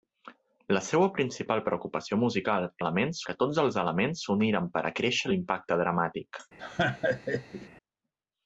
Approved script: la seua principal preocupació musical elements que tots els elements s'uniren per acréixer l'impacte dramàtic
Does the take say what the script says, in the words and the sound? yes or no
no